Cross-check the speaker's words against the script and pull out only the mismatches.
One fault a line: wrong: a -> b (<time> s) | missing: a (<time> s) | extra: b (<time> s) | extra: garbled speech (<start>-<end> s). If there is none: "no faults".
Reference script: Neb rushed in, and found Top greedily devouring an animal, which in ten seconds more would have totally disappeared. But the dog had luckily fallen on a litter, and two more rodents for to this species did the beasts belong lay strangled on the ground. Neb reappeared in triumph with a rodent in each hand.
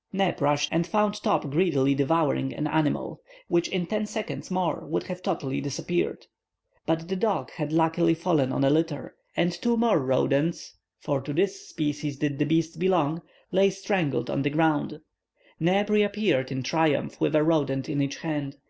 missing: in (0.7 s)